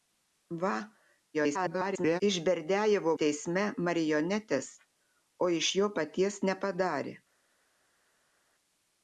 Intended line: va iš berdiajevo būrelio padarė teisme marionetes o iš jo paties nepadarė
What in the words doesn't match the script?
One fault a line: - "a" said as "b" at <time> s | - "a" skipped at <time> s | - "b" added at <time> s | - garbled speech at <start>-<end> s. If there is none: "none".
- garbled speech at 1.3-2.2 s
- "būrelio padarė" skipped at 3.1 s